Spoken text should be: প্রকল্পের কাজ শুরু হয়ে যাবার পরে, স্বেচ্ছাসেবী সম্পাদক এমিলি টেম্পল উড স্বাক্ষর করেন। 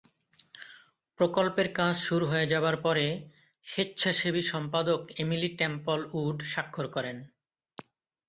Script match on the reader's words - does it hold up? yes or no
yes